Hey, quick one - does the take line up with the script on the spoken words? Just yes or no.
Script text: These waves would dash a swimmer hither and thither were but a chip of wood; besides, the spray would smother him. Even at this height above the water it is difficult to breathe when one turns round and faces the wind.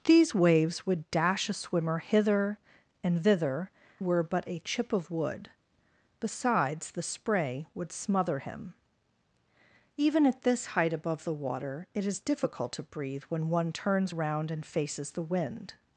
yes